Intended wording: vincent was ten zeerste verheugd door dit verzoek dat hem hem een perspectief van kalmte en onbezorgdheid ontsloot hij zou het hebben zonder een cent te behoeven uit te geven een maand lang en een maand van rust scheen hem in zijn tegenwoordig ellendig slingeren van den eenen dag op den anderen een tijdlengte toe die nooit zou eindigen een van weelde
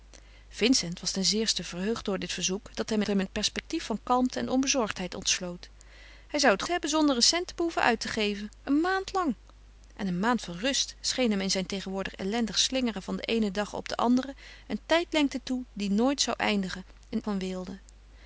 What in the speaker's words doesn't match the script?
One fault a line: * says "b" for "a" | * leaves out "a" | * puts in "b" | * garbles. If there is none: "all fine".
all fine